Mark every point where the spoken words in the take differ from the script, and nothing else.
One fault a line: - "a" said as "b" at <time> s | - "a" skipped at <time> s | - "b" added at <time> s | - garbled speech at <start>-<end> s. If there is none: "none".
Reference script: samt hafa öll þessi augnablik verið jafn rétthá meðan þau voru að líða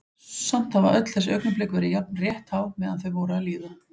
none